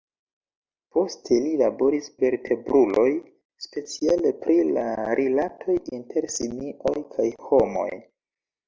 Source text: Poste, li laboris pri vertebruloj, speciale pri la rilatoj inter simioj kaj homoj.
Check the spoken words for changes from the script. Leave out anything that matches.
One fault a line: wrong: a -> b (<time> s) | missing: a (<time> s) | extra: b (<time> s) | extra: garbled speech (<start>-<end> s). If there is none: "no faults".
missing: pri (2.1 s)